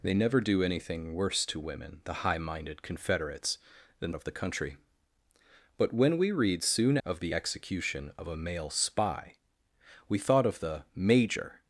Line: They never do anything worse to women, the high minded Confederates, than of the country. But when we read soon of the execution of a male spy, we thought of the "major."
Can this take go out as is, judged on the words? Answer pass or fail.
pass